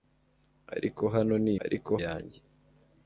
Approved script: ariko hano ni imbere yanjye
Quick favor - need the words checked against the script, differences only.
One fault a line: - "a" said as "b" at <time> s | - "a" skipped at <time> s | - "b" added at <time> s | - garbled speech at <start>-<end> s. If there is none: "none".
- "imbere" said as "ariko" at 1.6 s